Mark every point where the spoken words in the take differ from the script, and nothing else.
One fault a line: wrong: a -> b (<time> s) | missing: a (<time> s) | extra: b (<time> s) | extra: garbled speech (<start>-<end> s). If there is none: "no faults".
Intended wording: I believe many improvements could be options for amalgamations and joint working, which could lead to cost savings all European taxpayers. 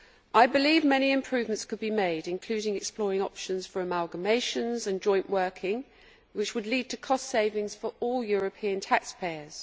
extra: made including exploring (1.9 s)
wrong: could -> would (6.5 s)
extra: for (7.8 s)